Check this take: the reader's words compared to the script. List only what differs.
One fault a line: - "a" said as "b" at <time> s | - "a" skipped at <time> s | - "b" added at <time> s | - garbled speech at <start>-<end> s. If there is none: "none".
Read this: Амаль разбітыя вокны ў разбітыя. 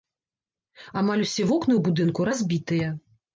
- "разбітыя" said as "усе" at 1.2 s
- "будынку" added at 1.9 s